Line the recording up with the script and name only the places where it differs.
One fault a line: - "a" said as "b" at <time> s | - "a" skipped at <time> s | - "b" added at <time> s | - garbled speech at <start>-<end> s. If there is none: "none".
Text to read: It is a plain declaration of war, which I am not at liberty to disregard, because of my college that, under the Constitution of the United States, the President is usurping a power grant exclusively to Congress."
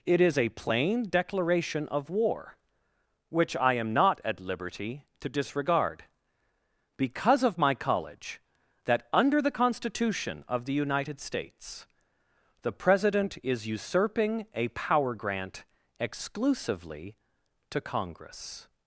none